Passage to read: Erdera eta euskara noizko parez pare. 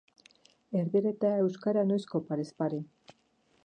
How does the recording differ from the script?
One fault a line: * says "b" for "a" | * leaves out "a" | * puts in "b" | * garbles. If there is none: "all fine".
all fine